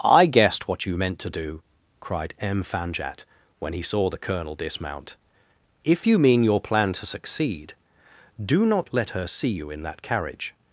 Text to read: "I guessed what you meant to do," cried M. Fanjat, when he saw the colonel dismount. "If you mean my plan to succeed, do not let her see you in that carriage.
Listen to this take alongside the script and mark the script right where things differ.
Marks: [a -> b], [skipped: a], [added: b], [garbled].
"I guessed what you meant to do," cried M. Fanjat, when he saw the colonel dismount. "If you mean [my -> your] plan to succeed, do not let her see you in that carriage.